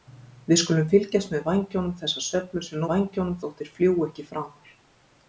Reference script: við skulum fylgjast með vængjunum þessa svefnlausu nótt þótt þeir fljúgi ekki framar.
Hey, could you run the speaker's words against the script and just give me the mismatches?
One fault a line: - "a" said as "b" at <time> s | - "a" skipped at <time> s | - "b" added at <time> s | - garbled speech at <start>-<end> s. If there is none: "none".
- "nótt" said as "vængjunum" at 2.9 s